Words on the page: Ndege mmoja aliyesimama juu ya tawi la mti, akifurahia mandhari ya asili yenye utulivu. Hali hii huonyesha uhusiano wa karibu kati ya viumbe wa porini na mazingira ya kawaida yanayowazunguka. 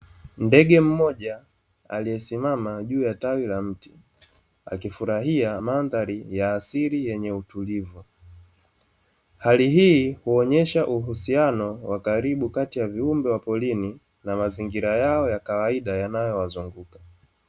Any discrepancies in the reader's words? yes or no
yes